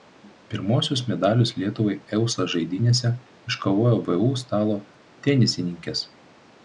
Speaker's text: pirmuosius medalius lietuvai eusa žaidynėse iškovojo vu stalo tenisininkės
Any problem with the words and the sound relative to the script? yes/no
no